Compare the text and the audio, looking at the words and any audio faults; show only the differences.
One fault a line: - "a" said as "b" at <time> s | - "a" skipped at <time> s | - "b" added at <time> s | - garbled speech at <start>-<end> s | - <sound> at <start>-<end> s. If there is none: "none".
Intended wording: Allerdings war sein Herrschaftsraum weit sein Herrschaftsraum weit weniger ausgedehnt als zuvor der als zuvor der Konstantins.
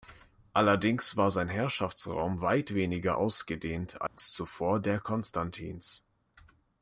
- "sein Herrschaftsraum weit" skipped at 2.8 s
- dropout at 4.1-4.2 s
- "als zuvor der" skipped at 5.0 s